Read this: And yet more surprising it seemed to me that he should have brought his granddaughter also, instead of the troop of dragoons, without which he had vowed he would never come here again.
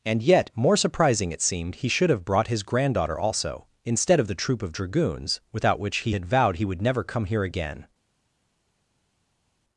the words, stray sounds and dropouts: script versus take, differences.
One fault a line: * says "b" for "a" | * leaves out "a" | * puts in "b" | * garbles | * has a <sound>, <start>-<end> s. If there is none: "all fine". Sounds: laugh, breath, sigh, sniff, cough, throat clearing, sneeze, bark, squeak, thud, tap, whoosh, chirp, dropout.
* leaves out "to me that"